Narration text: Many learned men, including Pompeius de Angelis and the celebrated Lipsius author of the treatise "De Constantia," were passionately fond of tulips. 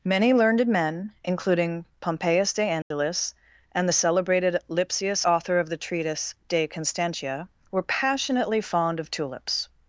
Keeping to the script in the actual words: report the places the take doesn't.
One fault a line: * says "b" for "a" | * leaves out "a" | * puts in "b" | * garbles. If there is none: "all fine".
all fine